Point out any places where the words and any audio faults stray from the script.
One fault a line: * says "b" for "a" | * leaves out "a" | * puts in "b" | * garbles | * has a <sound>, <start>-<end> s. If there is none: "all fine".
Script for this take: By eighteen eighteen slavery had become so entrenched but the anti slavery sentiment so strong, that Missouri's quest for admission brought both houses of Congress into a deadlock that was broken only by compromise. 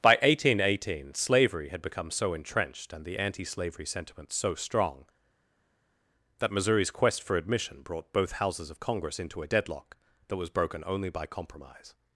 * says "and" for "but"